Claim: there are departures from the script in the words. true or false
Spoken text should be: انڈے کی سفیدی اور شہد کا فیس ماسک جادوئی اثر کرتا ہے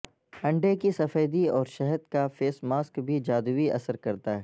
true